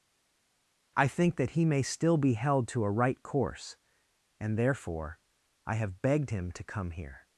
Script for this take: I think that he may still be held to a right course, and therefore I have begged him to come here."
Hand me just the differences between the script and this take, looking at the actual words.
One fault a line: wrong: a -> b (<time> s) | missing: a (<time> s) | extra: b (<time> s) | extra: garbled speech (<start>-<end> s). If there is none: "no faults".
no faults